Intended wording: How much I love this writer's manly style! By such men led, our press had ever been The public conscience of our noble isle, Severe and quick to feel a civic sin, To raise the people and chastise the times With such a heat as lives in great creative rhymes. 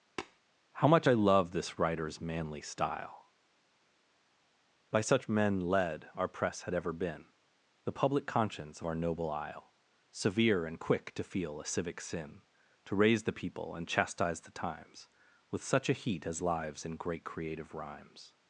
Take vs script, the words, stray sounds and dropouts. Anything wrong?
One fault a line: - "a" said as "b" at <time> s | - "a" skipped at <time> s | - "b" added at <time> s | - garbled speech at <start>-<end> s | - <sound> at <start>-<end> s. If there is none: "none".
- tap at 0.2-0.4 s